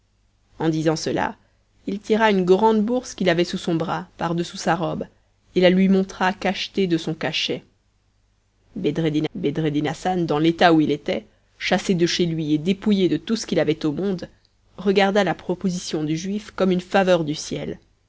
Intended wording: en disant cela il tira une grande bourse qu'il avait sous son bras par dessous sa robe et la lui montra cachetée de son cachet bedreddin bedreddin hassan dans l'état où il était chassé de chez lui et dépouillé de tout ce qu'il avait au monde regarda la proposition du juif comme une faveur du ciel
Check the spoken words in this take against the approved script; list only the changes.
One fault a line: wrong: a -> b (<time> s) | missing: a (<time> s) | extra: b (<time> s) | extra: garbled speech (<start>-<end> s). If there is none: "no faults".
no faults